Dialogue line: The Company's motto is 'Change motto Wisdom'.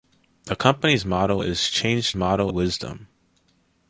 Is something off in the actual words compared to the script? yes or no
no